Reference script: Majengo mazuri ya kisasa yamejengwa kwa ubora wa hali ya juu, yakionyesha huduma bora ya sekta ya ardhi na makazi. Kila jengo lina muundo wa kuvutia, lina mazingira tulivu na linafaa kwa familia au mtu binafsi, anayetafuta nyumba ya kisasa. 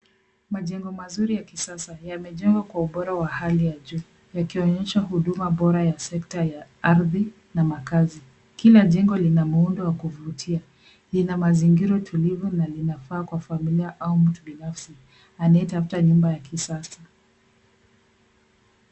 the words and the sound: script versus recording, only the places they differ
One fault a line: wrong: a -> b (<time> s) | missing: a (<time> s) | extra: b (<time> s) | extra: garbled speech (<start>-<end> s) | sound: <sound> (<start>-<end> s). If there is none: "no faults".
no faults